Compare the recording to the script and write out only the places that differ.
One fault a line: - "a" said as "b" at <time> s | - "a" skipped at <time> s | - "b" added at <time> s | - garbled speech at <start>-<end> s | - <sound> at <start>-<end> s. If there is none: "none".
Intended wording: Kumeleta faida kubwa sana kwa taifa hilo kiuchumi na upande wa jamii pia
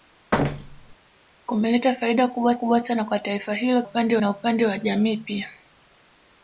- thud at 0.3-1.0 s
- "kubwa" added at 2.5 s
- "kiuchumi" said as "upande" at 3.8 s